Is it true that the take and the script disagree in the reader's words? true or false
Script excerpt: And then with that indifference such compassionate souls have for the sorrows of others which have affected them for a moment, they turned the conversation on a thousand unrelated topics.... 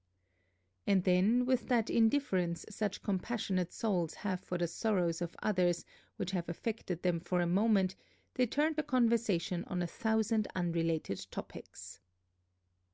false